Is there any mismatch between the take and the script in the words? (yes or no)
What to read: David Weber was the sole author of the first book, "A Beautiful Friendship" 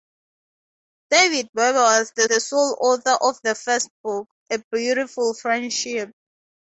yes